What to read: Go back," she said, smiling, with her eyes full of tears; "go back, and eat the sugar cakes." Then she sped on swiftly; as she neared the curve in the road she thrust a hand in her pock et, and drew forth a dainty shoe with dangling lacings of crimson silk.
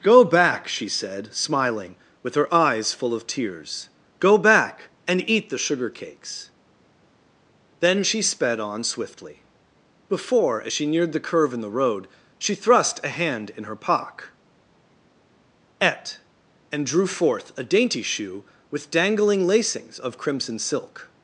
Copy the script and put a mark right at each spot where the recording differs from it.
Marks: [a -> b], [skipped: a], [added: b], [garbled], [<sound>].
Go back," she said, smiling, with her eyes full of tears; "go back, and eat the sugar cakes." Then she sped on swiftly; [added: before] as she neared the curve in the road she thrust a hand in her pock et, and drew forth a dainty shoe with dangling lacings of crimson silk.